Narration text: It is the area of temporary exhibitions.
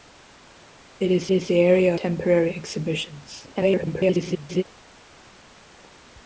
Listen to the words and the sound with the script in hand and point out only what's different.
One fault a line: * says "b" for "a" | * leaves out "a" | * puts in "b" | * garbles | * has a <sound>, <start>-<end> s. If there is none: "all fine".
* puts in "is"
* leaves out "of"
* garbles